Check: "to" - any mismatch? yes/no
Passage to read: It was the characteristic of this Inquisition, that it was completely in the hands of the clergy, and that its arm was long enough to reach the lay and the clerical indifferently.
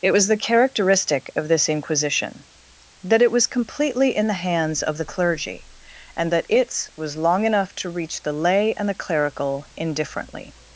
no